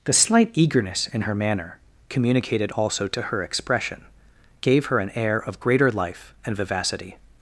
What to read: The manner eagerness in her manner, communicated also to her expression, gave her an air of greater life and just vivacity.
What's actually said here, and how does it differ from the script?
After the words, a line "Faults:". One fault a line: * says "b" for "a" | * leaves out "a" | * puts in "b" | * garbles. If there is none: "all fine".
The slight eagerness in her manner, communicated also to her expression, gave her an air of greater life and vivacity.
Faults:
* says "slight" for "manner"
* leaves out "just"